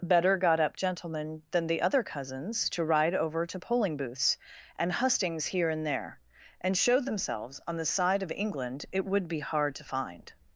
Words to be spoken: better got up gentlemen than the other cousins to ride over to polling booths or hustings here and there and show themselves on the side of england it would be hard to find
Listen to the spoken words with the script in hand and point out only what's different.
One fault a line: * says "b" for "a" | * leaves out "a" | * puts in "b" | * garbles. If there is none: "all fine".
* says "and" for "or"